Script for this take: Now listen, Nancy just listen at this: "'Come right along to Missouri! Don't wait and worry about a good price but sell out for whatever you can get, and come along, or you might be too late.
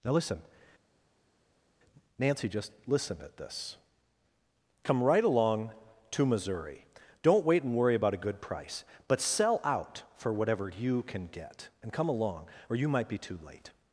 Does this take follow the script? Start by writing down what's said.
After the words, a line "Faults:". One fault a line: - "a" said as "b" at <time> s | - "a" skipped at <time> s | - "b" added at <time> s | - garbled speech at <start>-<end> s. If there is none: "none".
Now listen, Nancy just listen at this: "'Come right along to Missouri! Don't wait and worry about a good price but sell out for whatever you can get, and come along, or you might be too late.
Faults:
none